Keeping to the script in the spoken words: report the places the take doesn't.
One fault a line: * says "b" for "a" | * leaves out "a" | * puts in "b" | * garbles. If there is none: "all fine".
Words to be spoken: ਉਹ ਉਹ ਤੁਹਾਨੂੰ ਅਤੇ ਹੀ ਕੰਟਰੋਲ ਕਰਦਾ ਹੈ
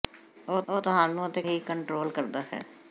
all fine